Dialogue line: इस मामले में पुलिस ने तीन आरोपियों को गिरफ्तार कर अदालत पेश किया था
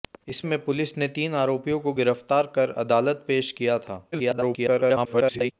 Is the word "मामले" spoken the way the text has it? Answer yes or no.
no